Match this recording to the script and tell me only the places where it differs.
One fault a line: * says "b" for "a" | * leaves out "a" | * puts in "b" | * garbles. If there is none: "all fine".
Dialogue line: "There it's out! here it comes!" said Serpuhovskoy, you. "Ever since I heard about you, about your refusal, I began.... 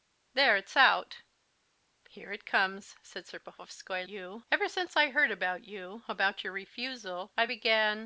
all fine